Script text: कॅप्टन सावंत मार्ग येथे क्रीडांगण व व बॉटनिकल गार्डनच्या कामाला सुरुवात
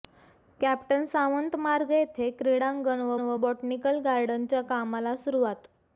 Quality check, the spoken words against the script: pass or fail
pass